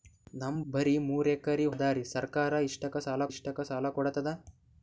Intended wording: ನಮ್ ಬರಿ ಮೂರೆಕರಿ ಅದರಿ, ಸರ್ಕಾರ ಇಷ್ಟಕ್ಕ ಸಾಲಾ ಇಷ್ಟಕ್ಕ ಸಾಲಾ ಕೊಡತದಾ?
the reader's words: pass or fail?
pass